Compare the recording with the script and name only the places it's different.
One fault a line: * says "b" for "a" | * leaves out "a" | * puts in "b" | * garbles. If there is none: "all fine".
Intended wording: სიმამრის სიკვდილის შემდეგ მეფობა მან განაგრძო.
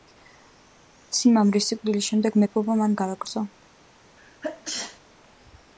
all fine